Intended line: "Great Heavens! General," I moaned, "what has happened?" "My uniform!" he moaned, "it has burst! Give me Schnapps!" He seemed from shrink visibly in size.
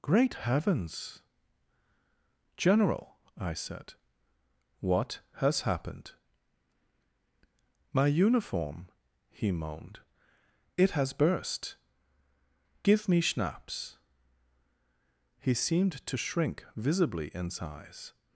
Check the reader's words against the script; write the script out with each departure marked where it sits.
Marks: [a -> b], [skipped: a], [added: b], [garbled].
"Great Heavens! General," I [moaned, -> said] "what has happened?" "My uniform!" he moaned, "it has burst! Give me Schnapps!" He seemed [from -> to] shrink visibly in size.